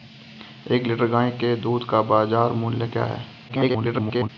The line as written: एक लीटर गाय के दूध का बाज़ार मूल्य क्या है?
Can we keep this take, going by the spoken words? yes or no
no